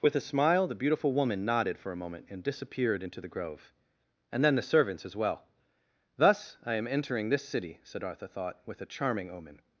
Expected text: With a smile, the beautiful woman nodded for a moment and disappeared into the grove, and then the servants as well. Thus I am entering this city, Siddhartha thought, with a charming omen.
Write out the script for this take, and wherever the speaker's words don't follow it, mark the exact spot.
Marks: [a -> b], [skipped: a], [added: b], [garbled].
With a smile, the beautiful woman nodded for a moment and disappeared into the grove, and then the servants as well. Thus I am entering this city, Siddhartha thought, with a charming omen.